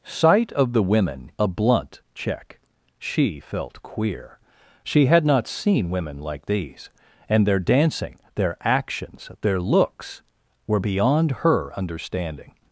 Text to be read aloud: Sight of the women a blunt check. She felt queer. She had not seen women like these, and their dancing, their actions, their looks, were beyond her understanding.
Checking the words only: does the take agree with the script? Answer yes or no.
yes